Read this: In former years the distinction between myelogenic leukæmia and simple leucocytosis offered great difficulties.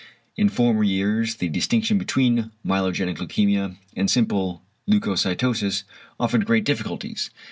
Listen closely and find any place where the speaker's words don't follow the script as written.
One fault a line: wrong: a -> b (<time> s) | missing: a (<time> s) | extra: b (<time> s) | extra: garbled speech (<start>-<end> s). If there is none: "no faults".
no faults